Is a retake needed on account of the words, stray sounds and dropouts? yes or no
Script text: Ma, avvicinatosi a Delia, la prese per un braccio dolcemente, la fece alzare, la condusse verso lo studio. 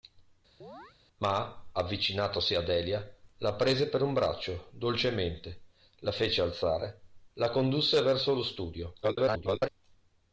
yes